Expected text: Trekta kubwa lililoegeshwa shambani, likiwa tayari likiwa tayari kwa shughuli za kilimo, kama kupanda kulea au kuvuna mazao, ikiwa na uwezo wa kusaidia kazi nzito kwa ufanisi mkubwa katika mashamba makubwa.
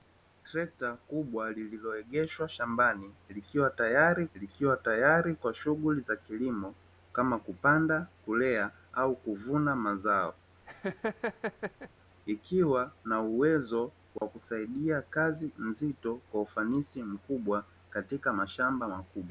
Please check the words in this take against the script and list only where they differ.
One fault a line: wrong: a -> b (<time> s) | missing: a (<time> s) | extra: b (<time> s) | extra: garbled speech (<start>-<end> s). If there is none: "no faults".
no faults